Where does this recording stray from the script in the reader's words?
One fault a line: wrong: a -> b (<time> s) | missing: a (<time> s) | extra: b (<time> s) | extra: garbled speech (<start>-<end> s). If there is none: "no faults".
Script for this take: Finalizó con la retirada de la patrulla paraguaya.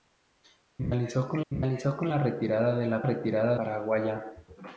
extra: finalizó con (1.5 s)
wrong: patrulla -> retirada (3.0 s)